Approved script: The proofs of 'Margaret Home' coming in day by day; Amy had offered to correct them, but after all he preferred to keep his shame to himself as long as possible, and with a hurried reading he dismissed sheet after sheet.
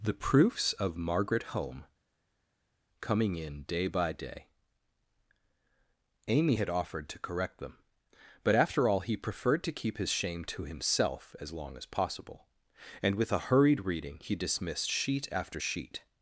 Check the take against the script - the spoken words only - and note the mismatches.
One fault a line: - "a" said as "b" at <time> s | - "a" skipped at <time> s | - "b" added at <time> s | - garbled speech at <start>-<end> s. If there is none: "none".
none